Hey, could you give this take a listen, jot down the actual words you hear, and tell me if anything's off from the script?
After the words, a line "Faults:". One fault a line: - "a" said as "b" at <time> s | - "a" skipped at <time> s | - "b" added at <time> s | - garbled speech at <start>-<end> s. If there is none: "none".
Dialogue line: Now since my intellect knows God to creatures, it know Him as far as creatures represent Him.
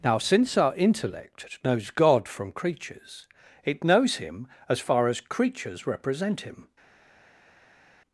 Now since our intellect knows God from creatures, it knows Him as far as creatures represent Him.
Faults:
- "my" said as "our" at 0.6 s
- "to" said as "from" at 2.3 s
- "know" said as "knows" at 3.8 s